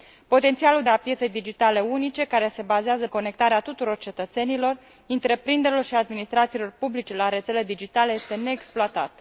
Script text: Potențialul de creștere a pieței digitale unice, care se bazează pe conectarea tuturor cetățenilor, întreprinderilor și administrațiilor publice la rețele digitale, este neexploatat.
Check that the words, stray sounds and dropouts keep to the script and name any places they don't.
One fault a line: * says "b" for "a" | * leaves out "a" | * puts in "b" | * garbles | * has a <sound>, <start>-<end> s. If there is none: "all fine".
* leaves out "de creștere"
* leaves out "pe"